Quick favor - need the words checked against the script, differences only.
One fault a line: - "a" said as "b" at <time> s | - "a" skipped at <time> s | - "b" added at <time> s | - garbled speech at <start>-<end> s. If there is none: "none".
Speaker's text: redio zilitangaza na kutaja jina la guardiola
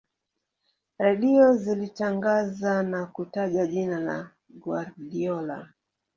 none